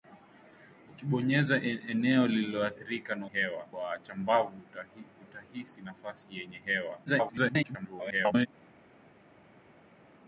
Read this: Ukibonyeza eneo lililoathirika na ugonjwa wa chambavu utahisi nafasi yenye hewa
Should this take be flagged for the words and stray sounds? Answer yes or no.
yes